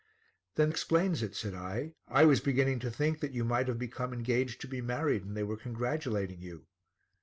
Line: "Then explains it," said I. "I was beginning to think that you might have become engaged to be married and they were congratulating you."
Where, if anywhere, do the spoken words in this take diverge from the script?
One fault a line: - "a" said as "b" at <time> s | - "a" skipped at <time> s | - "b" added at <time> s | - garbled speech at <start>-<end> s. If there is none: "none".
none